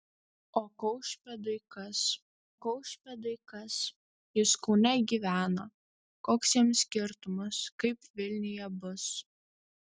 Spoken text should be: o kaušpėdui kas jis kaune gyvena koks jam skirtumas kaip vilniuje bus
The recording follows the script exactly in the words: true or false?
false